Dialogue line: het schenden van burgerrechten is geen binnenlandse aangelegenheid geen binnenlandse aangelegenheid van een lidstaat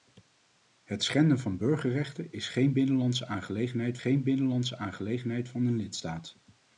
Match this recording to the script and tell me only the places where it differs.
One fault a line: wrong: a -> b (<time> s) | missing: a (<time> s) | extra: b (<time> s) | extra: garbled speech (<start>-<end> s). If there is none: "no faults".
no faults